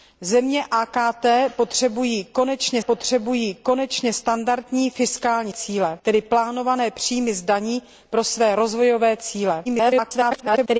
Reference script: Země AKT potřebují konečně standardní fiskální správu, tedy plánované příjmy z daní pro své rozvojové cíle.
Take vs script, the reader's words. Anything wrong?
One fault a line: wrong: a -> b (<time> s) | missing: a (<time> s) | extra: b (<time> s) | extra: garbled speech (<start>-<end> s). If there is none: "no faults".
extra: potřebují konečně (2.8 s)
wrong: správu -> cíle (5.5 s)
extra: garbled speech (9.6-10.8 s)